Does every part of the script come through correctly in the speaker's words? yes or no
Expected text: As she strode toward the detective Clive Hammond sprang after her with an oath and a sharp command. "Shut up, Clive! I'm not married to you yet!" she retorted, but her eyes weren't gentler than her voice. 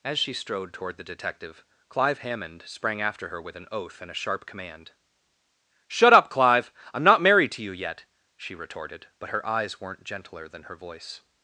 yes